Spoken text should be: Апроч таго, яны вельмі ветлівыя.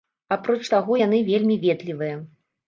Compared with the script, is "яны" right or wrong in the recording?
right